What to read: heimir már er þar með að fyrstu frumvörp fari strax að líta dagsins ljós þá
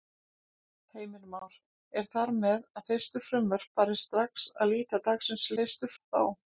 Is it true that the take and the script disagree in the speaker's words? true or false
true